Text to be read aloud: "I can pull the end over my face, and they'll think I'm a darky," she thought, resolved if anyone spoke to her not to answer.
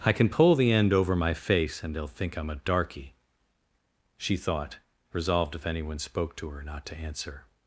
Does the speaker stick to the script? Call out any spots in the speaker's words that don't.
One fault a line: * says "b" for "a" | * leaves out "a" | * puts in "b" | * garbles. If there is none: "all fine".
all fine